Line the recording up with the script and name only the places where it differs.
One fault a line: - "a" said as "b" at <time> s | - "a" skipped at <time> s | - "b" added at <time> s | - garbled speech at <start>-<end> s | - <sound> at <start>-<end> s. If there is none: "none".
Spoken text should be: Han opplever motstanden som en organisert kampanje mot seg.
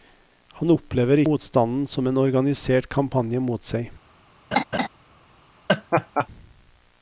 - laugh at 4.5-4.9 s
- laugh at 5.7-6.3 s